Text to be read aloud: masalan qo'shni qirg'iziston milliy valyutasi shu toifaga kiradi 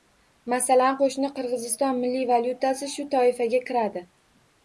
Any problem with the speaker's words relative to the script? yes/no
no